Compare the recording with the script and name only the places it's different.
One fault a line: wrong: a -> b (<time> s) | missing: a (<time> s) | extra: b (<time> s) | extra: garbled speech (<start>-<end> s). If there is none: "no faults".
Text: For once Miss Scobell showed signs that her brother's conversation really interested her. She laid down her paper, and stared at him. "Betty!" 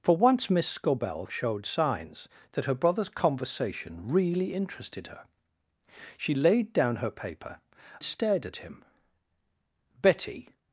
missing: and (7.6 s)